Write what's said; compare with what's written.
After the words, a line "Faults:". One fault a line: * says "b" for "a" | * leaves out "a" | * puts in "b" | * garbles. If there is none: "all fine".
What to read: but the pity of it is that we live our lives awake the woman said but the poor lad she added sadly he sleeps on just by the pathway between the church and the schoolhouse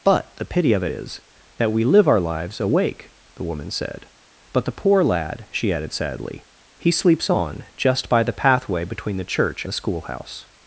but the pity of it is that we live our lives awake the woman said but the poor lad she added sadly he sleeps on just by the pathway between the church the schoolhouse
Faults:
* leaves out "and"